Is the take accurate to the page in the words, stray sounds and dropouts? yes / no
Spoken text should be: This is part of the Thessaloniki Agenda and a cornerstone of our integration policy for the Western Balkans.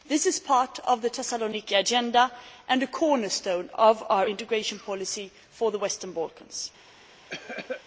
no